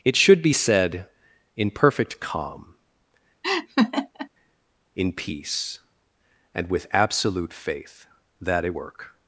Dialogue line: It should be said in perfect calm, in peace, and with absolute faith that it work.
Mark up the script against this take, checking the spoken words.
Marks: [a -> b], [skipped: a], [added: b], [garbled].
It should be said in perfect calm, in peace, and with absolute faith that it work.